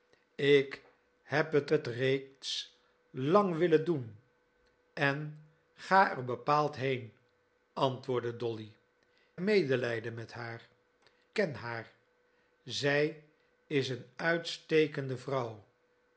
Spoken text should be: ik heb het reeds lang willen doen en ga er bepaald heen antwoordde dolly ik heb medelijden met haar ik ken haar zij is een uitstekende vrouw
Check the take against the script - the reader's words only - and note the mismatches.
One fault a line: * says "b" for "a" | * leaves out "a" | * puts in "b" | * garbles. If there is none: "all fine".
* puts in "het"
* leaves out "ik heb"
* leaves out "ik"